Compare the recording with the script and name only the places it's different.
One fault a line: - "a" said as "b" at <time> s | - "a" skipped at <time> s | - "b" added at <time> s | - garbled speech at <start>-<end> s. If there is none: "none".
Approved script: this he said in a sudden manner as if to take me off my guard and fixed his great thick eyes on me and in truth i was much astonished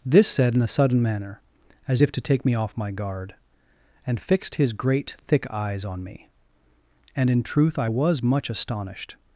- "he" skipped at 0.3 s